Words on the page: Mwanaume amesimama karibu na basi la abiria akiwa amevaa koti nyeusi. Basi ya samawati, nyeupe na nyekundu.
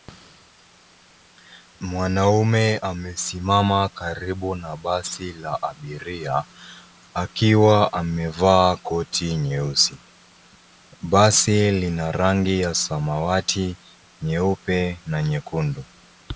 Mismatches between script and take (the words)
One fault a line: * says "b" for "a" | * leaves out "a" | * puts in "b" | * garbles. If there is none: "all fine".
* puts in "lina rangi"